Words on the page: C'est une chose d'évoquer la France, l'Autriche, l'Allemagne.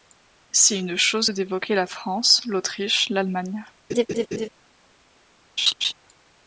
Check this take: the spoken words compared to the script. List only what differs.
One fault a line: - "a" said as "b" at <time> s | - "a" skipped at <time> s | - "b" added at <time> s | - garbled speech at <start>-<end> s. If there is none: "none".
none